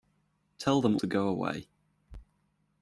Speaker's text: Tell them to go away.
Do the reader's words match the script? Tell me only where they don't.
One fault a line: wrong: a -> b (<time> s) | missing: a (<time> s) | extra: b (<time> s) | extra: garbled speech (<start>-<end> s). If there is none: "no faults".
no faults